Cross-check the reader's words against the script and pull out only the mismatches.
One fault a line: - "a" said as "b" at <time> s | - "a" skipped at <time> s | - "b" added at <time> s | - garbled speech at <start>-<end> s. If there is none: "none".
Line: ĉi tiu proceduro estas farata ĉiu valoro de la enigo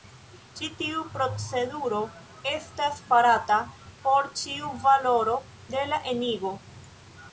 - "por" added at 4.1 s